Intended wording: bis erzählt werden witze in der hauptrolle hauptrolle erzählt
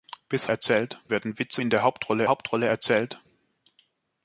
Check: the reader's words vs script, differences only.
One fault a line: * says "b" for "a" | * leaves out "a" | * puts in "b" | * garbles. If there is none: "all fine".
all fine